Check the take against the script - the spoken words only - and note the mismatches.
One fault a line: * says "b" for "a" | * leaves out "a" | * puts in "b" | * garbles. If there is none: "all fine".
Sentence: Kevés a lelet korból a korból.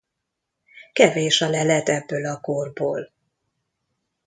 * says "ebből" for "korból"